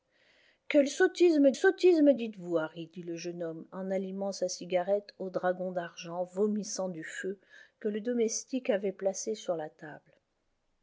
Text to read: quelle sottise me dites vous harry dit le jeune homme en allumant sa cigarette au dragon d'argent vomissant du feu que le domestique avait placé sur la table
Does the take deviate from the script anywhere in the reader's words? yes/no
yes